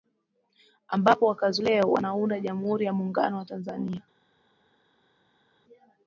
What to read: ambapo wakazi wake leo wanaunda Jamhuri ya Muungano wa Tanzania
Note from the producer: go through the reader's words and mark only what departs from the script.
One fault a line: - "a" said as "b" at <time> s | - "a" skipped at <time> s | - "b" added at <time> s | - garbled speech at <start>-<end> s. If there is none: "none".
- "wake" skipped at 1.6 s